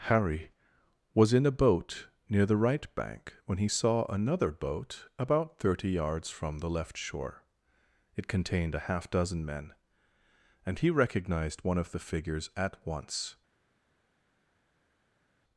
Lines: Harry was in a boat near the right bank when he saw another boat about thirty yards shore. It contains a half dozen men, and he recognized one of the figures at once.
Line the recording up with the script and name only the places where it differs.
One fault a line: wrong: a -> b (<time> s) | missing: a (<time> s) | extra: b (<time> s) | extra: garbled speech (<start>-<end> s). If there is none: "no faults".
extra: from the left (6.3 s)
wrong: contains -> contained (8.3 s)